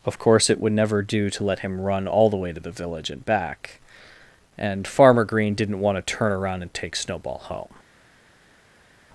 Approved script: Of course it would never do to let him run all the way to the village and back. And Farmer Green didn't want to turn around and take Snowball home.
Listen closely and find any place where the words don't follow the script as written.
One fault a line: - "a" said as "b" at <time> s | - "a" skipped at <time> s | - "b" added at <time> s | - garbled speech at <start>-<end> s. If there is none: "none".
none